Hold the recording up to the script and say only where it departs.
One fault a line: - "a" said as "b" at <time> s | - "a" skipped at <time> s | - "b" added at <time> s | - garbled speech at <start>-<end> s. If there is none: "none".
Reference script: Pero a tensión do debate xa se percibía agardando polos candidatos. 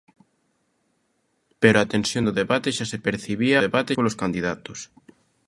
- "agardando" said as "debate" at 3.6 s